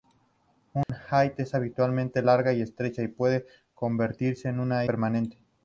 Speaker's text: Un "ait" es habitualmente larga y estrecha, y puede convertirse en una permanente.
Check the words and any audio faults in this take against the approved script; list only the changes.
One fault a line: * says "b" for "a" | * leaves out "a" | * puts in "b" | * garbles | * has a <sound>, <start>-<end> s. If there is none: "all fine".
* has a dropout, 0.8-0.9 s